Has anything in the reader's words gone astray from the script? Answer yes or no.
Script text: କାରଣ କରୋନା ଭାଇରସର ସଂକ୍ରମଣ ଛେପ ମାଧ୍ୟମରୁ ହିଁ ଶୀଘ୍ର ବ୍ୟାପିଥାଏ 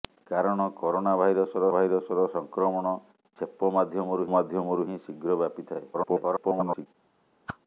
yes